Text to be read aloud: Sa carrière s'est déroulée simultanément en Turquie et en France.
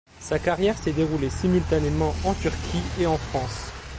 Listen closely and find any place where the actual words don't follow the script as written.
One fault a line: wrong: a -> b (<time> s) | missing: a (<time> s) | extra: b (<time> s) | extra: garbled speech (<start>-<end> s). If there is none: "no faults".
no faults